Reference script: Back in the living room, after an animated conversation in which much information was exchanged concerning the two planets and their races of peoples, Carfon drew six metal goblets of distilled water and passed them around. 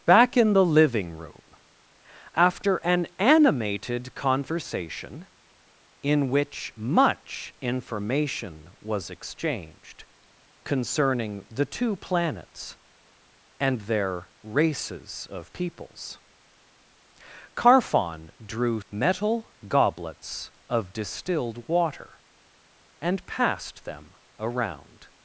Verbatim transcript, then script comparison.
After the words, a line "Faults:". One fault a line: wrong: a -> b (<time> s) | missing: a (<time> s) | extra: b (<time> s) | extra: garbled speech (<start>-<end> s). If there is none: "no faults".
Back in the living room, after an animated conversation in which much information was exchanged concerning the two planets and their races of peoples, Carfon drew metal goblets of distilled water and passed them around.
Faults:
missing: six (18.8 s)